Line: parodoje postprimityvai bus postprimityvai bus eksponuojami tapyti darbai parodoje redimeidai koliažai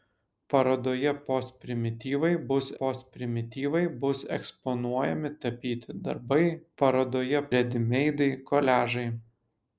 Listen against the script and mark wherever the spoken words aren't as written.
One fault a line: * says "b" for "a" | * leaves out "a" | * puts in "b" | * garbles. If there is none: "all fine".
all fine